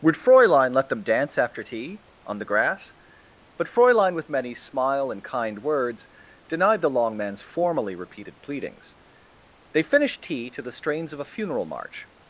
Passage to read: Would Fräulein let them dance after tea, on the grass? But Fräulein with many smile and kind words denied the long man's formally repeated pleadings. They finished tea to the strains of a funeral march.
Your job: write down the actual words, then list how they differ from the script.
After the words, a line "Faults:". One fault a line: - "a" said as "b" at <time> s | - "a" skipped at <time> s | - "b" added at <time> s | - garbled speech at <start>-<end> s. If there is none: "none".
Would Fräulein let them dance after tea, on the grass? But Fräulein with many smile and kind words denied the long man's formally repeated pleadings. They finished tea to the strains of a funeral march.
Faults:
none